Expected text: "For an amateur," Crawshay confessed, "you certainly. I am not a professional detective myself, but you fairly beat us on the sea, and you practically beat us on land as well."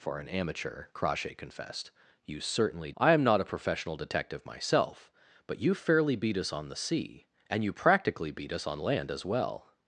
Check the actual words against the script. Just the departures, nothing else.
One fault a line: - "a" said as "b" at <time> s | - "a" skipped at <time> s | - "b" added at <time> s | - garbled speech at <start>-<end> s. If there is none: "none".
none